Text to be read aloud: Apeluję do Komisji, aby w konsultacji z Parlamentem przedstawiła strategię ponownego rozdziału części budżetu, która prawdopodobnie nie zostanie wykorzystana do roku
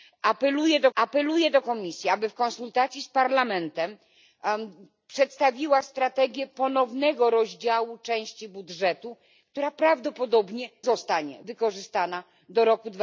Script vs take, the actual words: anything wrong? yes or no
yes